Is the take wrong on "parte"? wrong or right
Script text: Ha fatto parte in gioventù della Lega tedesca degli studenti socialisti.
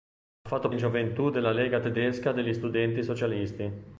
wrong